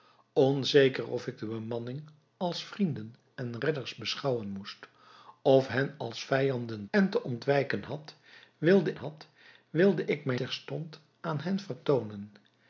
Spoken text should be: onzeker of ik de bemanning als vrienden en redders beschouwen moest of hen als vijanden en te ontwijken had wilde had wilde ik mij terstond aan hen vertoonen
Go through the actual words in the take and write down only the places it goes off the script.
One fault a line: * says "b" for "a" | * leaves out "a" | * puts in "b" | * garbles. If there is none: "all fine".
all fine